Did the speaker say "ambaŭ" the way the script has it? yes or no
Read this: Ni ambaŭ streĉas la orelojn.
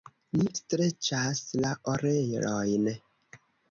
no